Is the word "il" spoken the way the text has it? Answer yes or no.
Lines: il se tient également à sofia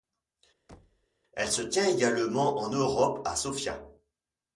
no